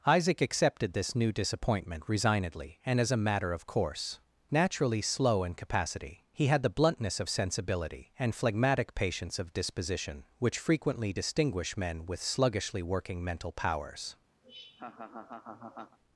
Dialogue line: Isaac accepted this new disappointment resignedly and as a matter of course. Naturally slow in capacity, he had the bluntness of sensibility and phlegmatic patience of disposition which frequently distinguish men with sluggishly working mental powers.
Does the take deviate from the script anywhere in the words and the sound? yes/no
yes